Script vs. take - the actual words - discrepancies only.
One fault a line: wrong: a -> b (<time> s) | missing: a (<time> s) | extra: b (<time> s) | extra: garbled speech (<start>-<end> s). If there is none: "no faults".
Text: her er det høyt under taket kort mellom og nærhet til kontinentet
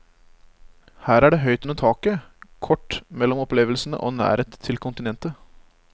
extra: opplevelsene (3.5 s)